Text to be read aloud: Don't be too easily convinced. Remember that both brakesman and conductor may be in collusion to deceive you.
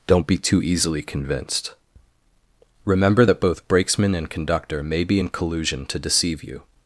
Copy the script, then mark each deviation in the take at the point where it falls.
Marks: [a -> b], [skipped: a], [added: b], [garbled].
Don't be too easily convinced. Remember that both brakesman and conductor may be in collusion to deceive you.